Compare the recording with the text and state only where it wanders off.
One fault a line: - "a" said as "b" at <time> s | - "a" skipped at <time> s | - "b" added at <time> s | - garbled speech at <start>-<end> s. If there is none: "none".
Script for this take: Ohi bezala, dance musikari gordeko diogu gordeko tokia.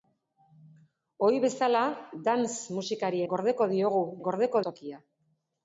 none